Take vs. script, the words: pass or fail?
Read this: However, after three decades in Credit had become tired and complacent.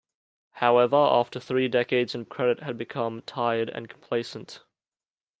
pass